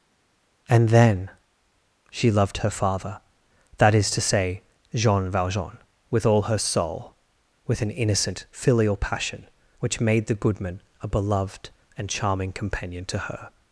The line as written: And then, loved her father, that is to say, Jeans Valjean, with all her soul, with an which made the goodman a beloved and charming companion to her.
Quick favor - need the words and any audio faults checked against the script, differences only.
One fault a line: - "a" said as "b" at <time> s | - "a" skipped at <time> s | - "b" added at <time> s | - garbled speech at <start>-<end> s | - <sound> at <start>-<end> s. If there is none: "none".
- "she" added at 2.1 s
- "Jeans" said as "Jean" at 4.9 s
- "innocent filial passion" added at 7.9 s